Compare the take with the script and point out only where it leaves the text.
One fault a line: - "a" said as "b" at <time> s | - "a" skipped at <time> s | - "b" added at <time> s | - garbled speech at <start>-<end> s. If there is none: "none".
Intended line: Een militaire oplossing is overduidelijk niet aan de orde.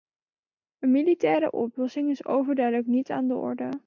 none